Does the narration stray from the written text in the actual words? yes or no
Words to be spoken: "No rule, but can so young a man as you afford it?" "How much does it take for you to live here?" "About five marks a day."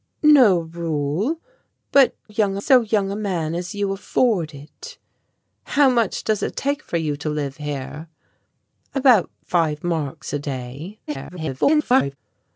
yes